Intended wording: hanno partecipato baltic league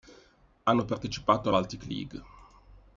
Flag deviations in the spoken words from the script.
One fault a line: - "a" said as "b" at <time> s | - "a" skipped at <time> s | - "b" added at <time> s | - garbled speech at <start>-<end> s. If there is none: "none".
none